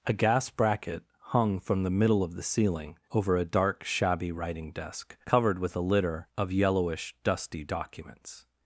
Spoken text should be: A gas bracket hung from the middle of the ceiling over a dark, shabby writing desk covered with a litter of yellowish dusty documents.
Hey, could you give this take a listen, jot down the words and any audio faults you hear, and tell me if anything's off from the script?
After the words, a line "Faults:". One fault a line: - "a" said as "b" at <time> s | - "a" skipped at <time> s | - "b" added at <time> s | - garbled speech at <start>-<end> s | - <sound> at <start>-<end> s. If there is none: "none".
A gas bracket hung from the middle of the ceiling over a dark, shabby writing desk covered with a litter of yellowish dusty documents.
Faults:
none